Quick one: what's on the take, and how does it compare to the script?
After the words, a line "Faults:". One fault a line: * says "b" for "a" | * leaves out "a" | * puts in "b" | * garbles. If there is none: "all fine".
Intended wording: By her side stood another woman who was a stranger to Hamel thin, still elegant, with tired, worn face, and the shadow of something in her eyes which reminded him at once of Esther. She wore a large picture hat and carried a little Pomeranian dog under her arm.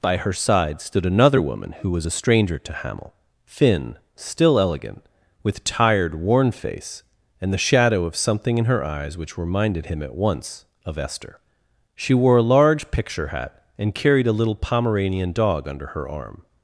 By her side stood another woman who was a stranger to Hamel thin, still elegant, with tired, worn face, and the shadow of something in her eyes which reminded him at once of Esther. She wore a large picture hat and carried a little Pomeranian dog under her arm.
Faults:
all fine